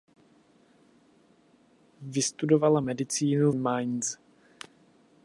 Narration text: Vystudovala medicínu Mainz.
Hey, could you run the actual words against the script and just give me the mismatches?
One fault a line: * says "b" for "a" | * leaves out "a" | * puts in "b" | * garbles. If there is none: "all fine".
all fine